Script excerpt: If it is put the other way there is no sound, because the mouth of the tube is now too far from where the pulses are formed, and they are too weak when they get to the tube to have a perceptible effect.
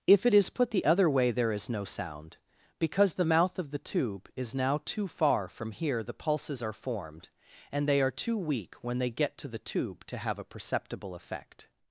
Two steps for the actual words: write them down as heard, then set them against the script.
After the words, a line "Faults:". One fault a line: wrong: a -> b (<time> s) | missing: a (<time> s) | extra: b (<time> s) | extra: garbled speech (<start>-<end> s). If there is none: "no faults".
If it is put the other way there is no sound, because the mouth of the tube is now too far from here the pulses are formed, and they are too weak when they get to the tube to have a perceptible effect.
Faults:
wrong: where -> here (5.7 s)